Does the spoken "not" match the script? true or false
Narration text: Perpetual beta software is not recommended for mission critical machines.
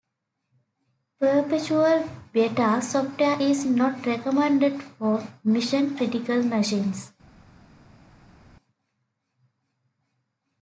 true